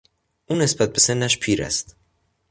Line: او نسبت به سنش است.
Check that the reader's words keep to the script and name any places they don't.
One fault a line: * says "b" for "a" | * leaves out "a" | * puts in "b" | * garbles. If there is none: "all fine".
* puts in "پیر"